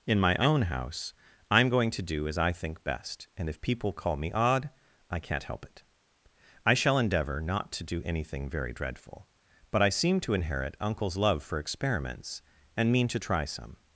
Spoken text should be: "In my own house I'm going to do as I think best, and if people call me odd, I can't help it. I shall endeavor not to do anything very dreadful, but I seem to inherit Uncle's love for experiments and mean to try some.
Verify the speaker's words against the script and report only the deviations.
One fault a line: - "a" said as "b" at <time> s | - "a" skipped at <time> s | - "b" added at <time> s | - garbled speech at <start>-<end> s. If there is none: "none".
none